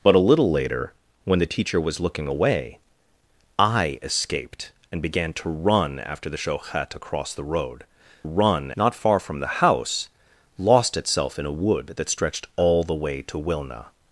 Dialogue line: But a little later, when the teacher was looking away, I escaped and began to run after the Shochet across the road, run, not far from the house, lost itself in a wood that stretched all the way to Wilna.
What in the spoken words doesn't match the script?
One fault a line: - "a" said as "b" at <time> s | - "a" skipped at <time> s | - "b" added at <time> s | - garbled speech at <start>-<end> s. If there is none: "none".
none